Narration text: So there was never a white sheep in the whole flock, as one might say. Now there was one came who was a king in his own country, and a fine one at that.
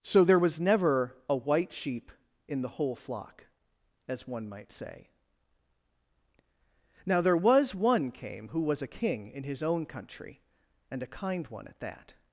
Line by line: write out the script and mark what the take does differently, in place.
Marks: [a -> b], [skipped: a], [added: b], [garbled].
So there was never a white sheep in the whole flock, as one might say. Now there was one came who was a king in his own country, and a [fine -> kind] one at that.